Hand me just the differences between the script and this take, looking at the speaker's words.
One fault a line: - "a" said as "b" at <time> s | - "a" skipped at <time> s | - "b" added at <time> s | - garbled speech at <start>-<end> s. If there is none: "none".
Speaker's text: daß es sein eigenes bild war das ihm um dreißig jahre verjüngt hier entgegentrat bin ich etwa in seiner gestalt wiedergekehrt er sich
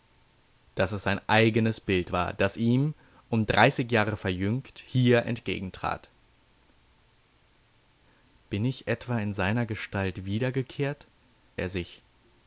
none